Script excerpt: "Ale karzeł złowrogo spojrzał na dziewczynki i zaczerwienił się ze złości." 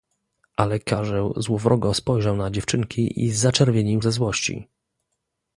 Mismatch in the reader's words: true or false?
true